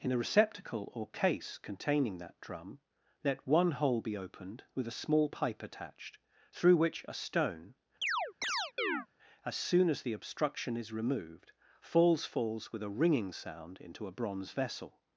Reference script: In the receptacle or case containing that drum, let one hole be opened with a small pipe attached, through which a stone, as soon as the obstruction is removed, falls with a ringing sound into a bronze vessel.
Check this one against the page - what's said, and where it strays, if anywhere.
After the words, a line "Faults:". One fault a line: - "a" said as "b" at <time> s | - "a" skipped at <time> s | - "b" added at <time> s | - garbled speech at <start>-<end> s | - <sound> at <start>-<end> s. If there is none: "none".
In the receptacle or case containing that drum, let one hole be opened with a small pipe attached, through which a stone, as soon as the obstruction is removed, falls falls with a ringing sound into a bronze vessel.
Faults:
- chirp at 8.0-9.1 s
- "falls" added at 12.2 s